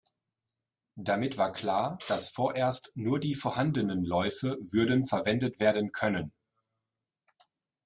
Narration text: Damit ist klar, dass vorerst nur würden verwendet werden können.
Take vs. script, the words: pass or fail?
fail